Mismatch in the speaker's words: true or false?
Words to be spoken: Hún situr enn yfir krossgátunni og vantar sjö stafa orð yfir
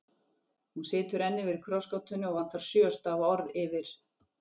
false